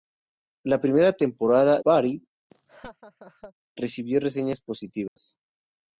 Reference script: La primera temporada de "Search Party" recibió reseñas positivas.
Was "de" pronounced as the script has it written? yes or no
no